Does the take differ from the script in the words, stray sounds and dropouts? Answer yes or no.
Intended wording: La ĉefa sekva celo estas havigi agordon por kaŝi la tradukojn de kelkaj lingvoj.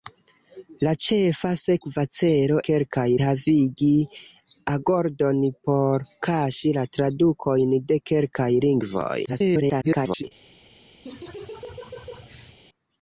yes